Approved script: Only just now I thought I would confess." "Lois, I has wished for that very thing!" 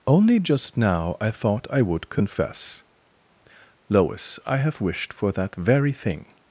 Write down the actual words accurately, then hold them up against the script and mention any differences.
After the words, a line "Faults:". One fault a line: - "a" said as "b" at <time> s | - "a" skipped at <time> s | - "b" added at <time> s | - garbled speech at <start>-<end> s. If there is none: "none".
Only just now I thought I would confess." "Lois, I have wished for that very thing!"
Faults:
- "has" said as "have" at 4.6 s